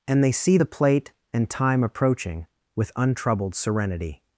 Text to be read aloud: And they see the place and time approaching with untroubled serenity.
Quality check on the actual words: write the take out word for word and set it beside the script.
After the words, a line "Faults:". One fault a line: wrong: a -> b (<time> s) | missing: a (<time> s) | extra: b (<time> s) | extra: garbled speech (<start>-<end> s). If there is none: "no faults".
And they see the plate and time approaching with untroubled serenity.
Faults:
wrong: place -> plate (0.6 s)